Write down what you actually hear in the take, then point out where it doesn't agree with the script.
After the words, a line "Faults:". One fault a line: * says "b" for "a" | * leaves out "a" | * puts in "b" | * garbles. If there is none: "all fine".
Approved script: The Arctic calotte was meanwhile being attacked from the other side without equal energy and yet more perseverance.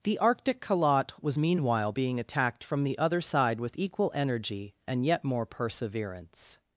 The Arctic calotte was meanwhile being attacked from the other side with equal energy and yet more perseverance.
Faults:
* says "with" for "without"